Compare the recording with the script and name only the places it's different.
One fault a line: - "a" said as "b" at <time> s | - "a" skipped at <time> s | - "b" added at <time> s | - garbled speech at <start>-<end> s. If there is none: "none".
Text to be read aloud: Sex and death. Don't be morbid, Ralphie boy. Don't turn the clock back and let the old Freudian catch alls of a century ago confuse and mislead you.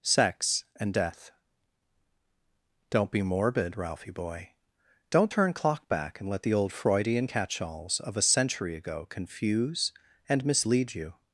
- "the" skipped at 5.5 s